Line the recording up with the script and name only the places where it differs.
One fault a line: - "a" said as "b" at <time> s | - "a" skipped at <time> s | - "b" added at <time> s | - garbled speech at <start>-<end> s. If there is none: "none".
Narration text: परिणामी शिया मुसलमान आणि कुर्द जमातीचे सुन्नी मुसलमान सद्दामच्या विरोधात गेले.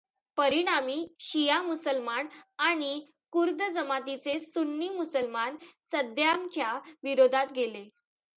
none